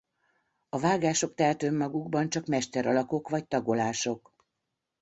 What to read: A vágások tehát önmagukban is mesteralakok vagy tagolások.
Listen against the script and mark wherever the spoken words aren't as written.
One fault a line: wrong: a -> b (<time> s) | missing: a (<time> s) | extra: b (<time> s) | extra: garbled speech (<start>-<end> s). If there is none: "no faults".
wrong: is -> csak (2.3 s)